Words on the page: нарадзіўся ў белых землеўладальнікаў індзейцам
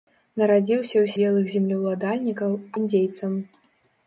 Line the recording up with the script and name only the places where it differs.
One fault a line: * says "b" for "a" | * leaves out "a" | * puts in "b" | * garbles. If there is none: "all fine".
all fine